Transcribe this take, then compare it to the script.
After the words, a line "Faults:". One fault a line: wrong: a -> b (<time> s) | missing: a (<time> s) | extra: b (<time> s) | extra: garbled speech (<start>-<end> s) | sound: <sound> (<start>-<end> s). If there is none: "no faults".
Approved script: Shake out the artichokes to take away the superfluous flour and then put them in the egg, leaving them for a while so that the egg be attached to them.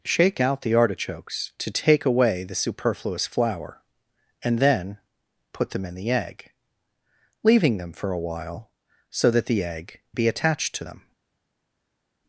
Shake out the artichokes to take away the superfluous flour and then put them in the egg, leaving them for a while so that the egg be attached to them.
Faults:
no faults